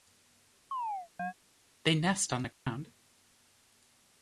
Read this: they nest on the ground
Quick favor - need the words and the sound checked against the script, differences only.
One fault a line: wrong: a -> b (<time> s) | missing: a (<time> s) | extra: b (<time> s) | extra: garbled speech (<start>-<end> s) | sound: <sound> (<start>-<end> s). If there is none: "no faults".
sound: chirp (0.7-1.3 s)
sound: dropout (2.5-2.7 s)